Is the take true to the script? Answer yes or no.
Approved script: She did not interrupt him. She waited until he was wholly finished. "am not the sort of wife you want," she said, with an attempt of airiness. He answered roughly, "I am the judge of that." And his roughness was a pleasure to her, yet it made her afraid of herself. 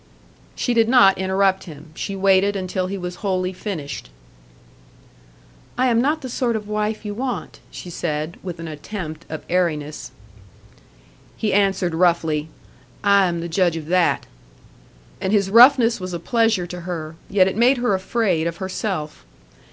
no